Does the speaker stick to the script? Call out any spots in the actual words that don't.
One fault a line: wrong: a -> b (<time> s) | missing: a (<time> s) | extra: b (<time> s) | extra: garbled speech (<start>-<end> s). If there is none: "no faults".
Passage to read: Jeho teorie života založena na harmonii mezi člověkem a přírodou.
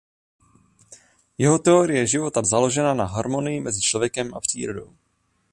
no faults